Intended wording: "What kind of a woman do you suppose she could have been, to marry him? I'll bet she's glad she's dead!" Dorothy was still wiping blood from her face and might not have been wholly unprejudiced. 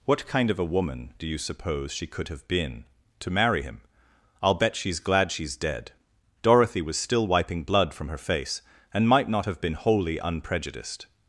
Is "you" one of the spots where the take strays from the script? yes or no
no